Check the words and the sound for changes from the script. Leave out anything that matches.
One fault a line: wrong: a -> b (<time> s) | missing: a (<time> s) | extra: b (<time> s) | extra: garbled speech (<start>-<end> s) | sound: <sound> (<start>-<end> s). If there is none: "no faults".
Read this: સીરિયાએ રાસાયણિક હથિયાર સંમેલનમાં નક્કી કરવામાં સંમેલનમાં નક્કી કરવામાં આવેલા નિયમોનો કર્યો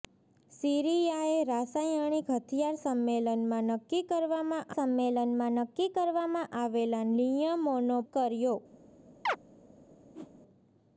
sound: chirp (9.3-9.4 s)
sound: whoosh (10.1-10.3 s)